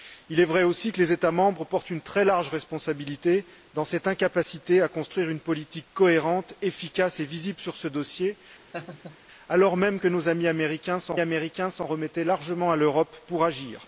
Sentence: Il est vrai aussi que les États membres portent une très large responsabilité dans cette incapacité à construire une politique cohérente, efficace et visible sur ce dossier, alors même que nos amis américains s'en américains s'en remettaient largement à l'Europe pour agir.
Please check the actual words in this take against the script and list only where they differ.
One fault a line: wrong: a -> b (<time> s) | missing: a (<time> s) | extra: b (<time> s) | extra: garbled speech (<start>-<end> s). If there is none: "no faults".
no faults